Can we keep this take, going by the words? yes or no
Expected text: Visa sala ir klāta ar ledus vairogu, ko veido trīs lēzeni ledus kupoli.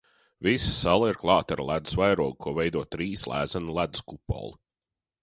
yes